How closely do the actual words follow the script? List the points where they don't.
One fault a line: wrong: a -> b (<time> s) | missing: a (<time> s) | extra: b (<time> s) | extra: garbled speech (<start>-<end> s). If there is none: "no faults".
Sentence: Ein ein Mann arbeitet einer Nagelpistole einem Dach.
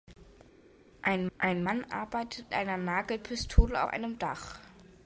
no faults